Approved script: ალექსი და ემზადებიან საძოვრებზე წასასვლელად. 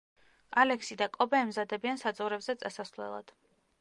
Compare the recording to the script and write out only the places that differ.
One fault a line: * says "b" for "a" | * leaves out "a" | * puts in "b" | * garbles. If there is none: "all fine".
* puts in "კობე"